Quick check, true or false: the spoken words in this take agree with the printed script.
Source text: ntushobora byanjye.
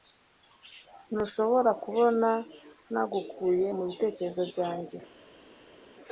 false